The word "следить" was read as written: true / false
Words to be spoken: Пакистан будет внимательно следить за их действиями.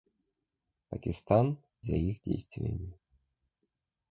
false